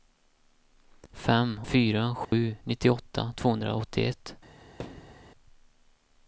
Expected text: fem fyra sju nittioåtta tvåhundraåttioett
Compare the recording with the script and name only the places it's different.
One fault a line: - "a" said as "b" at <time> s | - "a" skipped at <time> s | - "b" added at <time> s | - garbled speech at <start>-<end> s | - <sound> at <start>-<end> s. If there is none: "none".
- dropout at 2.2-2.3 s
- thud at 4.8-5.3 s